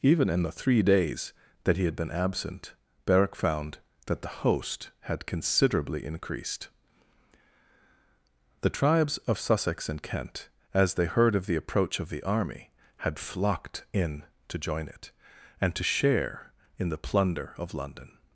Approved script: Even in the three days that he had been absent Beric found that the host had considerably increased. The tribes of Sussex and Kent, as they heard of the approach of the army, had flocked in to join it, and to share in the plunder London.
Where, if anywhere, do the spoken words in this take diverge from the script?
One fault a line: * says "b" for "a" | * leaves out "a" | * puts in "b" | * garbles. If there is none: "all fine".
* puts in "of"